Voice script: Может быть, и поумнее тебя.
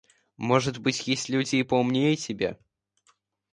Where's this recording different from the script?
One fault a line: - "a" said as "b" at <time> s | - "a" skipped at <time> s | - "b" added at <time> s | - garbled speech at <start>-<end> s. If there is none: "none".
- "есть люди" added at 1.1 s